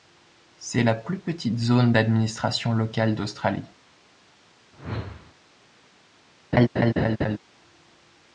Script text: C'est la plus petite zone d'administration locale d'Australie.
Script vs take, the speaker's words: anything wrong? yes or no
no